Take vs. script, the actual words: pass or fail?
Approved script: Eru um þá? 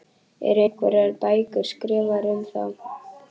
fail